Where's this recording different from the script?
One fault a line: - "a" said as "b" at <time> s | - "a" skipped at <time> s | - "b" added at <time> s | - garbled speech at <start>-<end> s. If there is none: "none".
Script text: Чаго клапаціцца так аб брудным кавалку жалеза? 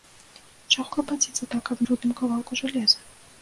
none